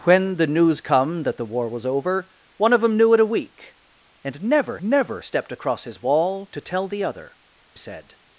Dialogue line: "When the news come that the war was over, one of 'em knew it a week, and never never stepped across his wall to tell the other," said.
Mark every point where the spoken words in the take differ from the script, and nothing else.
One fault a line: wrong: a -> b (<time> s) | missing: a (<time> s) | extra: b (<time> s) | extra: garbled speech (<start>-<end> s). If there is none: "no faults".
no faults